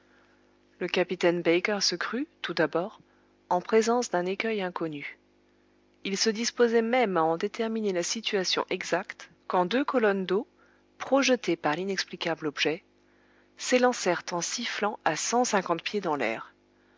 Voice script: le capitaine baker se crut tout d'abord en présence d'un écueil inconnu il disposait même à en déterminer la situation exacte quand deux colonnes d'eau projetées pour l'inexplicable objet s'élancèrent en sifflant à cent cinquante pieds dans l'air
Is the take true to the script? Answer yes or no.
no